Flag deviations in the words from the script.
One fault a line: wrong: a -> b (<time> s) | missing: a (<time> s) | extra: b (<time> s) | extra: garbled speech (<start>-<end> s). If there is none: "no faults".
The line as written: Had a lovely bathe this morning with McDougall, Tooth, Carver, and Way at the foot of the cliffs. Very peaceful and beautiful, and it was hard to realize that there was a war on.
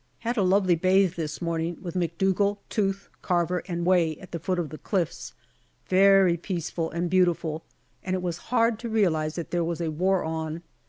no faults